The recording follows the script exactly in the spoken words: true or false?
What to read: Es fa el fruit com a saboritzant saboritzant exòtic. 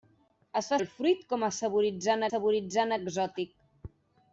true